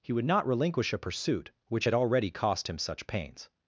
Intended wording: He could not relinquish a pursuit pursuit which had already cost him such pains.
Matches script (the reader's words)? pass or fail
fail